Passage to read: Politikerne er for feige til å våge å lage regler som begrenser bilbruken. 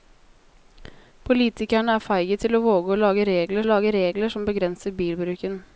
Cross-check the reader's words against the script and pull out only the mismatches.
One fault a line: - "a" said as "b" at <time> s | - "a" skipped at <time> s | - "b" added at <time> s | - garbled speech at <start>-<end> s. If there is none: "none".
- "for" skipped at 2.0 s
- "lage regler" added at 3.7 s